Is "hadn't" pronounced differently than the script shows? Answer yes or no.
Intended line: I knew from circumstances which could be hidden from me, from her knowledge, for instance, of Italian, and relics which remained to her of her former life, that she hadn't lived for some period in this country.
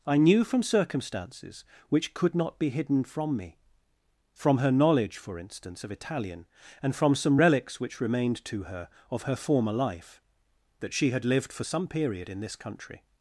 yes